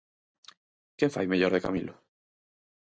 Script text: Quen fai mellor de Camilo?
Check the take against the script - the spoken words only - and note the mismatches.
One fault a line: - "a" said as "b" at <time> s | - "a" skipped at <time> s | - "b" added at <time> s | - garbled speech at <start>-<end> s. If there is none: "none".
none